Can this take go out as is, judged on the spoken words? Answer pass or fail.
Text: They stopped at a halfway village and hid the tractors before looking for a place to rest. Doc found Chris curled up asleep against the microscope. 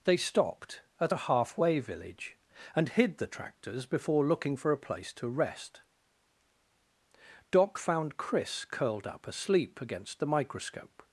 pass